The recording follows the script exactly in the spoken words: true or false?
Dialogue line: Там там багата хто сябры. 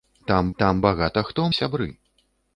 true